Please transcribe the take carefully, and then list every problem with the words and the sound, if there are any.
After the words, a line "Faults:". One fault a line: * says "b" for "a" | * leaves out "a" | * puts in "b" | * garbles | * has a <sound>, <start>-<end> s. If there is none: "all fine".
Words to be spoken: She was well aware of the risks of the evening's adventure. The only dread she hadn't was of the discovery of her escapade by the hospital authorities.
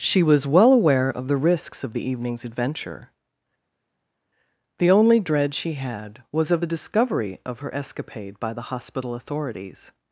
She was well aware of the risks of the evening's adventure. The only dread she had was of the discovery of her escapade by the hospital authorities.
Faults:
* says "had" for "hadn't"